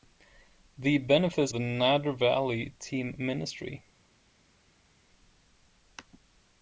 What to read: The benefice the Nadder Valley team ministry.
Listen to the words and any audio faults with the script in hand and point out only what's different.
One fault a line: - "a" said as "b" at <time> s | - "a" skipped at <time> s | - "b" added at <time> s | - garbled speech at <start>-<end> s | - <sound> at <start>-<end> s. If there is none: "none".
none